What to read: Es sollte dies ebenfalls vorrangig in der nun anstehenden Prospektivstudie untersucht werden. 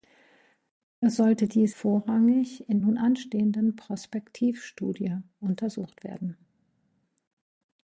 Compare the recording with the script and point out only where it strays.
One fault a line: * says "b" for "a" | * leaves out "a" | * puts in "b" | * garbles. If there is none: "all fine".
* leaves out "ebenfalls"
* leaves out "der"